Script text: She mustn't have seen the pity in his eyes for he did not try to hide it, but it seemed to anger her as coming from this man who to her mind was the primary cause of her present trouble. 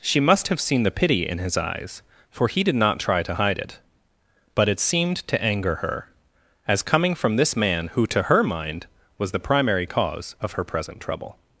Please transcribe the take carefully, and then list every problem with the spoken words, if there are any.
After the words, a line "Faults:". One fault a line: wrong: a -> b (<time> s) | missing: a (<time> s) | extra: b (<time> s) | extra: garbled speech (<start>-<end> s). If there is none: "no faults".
She must have seen the pity in his eyes for he did not try to hide it, but it seemed to anger her as coming from this man who to her mind was the primary cause of her present trouble.
Faults:
wrong: mustn't -> must (0.2 s)